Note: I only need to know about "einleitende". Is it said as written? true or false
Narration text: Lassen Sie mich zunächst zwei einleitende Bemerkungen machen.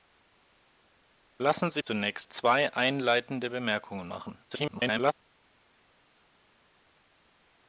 true